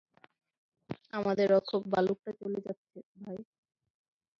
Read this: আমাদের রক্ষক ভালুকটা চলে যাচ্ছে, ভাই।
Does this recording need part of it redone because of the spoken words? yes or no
no